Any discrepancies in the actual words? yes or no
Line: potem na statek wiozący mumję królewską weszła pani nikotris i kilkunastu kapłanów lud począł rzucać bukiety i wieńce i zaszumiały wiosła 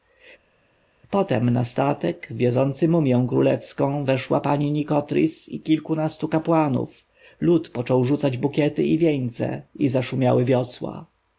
no